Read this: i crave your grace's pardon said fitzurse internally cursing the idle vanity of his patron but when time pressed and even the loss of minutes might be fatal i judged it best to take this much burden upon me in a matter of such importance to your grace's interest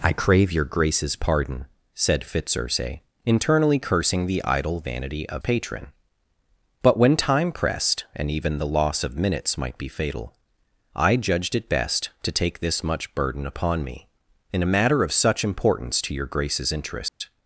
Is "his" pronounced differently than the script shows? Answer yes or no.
yes